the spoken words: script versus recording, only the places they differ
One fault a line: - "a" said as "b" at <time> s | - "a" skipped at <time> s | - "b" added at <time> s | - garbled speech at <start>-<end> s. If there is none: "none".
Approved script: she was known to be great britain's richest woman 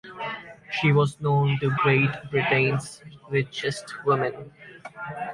- "be" skipped at 1.8 s